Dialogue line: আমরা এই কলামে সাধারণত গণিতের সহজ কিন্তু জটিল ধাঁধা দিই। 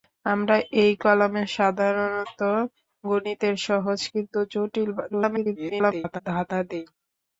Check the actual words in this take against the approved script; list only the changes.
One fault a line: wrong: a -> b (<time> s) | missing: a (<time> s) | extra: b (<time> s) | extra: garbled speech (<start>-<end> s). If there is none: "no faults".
extra: garbled speech (5.1-6.2 s)